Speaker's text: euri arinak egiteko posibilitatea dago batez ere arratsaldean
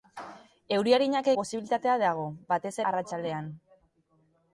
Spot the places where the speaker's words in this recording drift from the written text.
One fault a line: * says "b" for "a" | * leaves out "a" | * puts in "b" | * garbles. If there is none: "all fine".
* leaves out "egiteko"
* leaves out "ere"